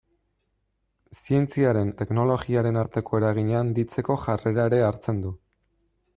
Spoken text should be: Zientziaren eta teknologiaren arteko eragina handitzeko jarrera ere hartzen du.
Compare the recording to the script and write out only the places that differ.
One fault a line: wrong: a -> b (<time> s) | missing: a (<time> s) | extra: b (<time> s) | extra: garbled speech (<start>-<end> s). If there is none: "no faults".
missing: eta (1.9 s)